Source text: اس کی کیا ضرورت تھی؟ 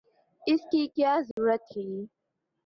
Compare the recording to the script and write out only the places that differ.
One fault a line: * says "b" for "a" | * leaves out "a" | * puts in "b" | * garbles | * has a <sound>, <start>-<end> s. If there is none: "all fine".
* has a dropout, 1.3-1.4 s